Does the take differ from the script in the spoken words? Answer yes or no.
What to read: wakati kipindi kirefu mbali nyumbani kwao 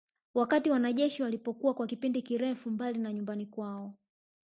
yes